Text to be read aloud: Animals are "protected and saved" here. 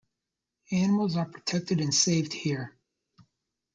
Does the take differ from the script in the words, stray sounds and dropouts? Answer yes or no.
no